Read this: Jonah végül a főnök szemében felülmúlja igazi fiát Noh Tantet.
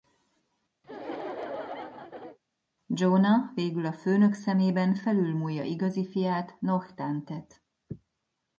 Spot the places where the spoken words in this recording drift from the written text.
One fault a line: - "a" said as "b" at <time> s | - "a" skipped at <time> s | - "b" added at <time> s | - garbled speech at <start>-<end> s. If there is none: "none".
none